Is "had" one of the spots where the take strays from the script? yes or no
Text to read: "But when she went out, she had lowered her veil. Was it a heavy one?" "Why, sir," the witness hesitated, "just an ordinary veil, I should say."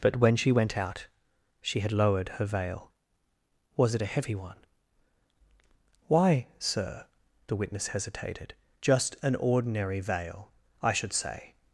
no